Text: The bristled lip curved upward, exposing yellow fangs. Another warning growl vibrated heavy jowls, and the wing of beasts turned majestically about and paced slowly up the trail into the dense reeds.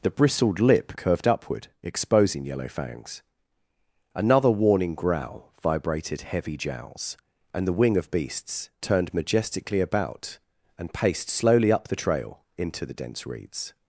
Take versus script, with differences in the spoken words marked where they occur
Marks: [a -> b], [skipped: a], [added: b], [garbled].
The bristled lip curved upward, exposing yellow fangs. Another warning growl vibrated heavy jowls, and the wing of beasts turned majestically about and paced slowly up the trail into the dense reeds.